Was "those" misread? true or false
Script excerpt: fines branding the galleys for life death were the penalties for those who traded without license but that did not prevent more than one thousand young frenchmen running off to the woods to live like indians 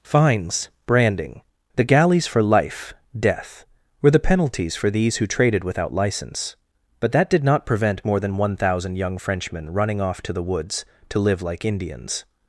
true